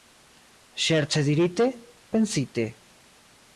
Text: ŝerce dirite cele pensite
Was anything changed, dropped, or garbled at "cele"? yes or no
yes